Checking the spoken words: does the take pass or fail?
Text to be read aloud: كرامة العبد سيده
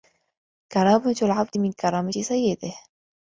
fail